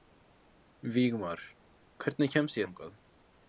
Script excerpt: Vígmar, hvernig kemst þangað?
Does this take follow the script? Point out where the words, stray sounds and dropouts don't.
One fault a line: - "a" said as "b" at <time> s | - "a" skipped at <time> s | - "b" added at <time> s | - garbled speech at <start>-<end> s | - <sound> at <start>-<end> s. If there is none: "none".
none